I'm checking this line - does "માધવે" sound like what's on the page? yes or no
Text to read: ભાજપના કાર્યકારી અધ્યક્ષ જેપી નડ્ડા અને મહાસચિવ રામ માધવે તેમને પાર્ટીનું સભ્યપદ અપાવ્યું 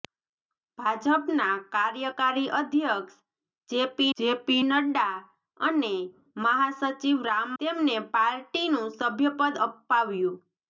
no